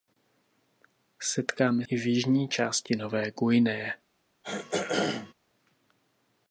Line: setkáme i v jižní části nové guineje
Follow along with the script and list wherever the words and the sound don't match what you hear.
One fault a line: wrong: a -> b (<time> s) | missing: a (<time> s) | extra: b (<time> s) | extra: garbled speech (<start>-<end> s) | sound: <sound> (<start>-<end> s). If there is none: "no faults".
sound: throat clearing (4.4-5.3 s)